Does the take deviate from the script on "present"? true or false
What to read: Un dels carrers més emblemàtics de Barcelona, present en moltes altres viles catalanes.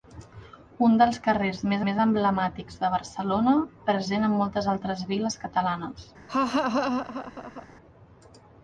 false